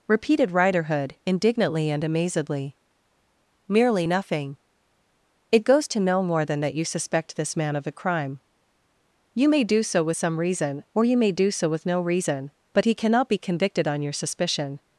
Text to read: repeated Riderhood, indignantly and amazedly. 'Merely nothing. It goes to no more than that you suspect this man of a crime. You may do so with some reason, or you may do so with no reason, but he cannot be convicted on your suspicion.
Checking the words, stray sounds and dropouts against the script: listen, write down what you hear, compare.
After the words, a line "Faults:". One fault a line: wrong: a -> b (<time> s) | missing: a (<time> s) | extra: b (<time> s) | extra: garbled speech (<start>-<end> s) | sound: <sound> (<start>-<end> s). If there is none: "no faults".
repeated Riderhood, indignantly and amazedly. 'Merely nothing. It goes to no more than that you suspect this man of a crime. You may do so with some reason, or you may do so with no reason, but he cannot be convicted on your suspicion.
Faults:
no faults